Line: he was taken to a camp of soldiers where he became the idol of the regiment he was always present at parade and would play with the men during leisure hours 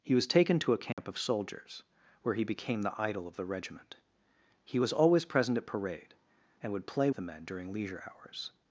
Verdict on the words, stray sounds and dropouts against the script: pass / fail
fail